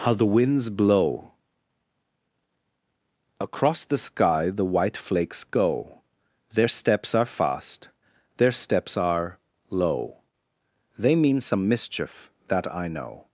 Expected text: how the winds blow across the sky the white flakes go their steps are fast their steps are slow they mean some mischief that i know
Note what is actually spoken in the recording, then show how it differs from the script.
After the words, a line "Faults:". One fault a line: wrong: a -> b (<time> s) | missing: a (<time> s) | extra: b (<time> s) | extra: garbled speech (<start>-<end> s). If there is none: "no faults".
how the winds blow across the sky the white flakes go their steps are fast their steps are low they mean some mischief that i know
Faults:
wrong: slow -> low (9.7 s)